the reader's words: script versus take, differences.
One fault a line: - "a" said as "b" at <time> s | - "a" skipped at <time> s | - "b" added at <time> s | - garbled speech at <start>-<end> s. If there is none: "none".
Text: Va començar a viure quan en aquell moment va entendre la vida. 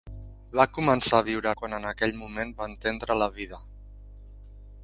none